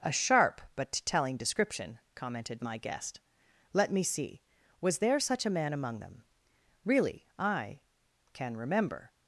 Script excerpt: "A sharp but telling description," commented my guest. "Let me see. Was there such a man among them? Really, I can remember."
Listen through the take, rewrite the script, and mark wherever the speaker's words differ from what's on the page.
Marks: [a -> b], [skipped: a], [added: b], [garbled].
"A sharp but telling description," commented my guest. "Let me see. Was there such a man among them? Really, I can remember."